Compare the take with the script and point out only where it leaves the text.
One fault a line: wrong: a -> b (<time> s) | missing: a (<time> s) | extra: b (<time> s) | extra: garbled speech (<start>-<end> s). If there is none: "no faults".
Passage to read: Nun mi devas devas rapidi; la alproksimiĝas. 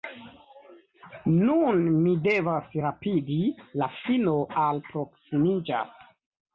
missing: devas (2.7 s)
extra: fino (4.0 s)